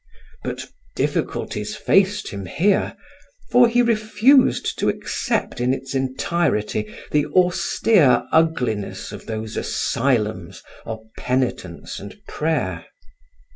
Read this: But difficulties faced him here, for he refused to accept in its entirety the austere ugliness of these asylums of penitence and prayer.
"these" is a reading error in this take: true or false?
true